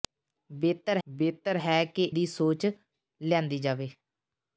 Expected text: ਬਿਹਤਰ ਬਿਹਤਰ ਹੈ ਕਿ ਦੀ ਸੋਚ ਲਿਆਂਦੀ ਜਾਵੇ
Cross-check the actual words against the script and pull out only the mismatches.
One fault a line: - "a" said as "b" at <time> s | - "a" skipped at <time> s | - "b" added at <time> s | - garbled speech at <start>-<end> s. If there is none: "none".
none